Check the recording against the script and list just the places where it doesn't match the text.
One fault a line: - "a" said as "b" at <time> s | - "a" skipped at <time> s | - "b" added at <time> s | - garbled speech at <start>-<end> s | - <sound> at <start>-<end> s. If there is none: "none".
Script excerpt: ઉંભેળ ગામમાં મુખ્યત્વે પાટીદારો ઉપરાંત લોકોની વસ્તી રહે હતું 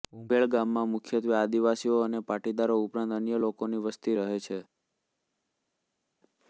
- "આદિવાસીઓ અને" added at 1.4 s
- "અન્ય" added at 3.1 s
- "હતું" said as "છે" at 4.4 s